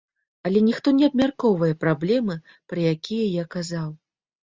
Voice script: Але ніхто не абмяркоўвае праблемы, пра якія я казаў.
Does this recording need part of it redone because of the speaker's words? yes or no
no